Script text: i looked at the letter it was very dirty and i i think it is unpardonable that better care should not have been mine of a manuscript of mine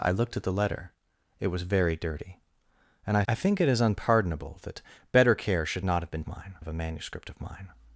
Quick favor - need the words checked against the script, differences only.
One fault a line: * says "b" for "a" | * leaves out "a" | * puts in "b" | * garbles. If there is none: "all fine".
all fine